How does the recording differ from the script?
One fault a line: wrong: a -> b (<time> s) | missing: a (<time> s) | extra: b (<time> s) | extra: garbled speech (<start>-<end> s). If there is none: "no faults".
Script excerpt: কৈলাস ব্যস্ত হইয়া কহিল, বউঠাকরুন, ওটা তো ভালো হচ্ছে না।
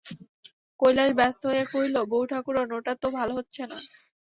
no faults